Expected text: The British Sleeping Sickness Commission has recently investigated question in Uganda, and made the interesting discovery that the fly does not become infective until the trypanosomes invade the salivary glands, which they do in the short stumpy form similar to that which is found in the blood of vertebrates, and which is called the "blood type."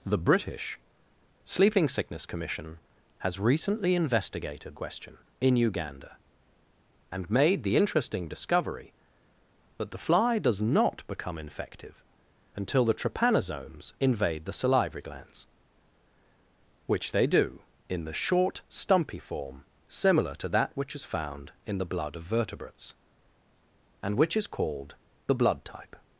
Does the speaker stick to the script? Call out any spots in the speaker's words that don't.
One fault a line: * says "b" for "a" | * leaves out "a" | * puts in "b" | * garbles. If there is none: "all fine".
all fine